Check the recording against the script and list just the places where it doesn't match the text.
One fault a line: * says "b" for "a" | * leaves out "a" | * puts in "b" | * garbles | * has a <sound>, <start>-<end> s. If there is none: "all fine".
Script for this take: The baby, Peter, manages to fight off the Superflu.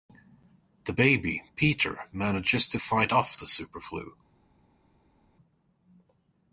all fine